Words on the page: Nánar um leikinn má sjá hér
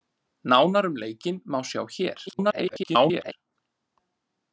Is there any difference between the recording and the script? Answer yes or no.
yes